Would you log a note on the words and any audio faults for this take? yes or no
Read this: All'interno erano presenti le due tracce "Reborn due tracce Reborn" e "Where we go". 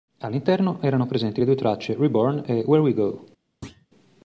yes